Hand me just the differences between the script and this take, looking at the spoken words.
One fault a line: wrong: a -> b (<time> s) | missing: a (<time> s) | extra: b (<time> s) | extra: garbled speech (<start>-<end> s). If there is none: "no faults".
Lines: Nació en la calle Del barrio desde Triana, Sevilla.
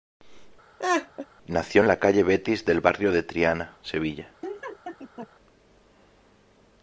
extra: Betis (2.2 s)
wrong: desde -> de (3.1 s)